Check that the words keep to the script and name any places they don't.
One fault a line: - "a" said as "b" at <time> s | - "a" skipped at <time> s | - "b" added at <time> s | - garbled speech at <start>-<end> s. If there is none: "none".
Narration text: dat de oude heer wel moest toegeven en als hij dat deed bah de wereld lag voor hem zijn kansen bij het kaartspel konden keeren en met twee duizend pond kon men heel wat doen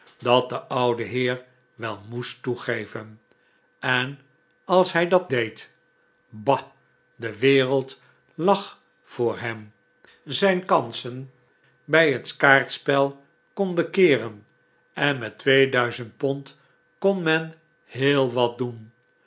none